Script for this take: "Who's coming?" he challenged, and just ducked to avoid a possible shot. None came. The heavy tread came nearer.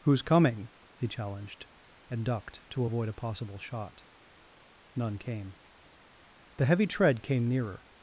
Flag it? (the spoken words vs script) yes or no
yes